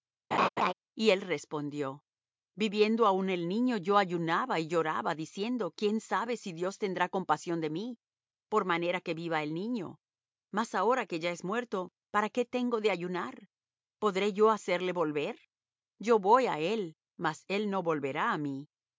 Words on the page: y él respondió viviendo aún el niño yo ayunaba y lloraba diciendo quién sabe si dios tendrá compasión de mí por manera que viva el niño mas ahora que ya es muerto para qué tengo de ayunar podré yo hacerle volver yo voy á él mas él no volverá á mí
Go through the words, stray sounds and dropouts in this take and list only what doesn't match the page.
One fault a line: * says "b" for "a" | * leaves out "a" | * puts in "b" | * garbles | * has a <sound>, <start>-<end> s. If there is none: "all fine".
* has a laugh, 0.3-0.7 s